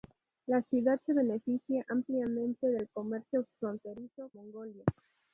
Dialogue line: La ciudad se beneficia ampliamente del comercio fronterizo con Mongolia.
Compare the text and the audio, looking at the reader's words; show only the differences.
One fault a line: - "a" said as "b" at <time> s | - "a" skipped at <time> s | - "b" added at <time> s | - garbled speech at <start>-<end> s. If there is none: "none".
- "con" skipped at 4.3 s